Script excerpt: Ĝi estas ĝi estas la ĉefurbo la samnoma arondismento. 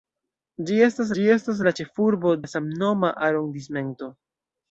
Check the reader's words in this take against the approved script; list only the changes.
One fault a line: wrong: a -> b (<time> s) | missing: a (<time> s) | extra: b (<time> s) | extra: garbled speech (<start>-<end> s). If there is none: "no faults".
no faults